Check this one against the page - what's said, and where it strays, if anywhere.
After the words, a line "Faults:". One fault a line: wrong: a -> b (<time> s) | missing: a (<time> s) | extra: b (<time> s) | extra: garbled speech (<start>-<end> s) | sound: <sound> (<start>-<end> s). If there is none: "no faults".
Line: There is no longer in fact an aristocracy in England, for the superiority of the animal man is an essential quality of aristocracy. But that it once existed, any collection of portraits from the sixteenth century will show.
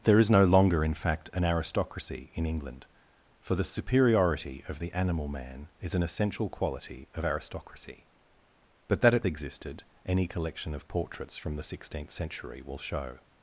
There is no longer in fact an aristocracy in England, for the superiority of the animal man is an essential quality of aristocracy. But that it existed, any collection of portraits from the sixteenth century will show.
Faults:
missing: once (9.3 s)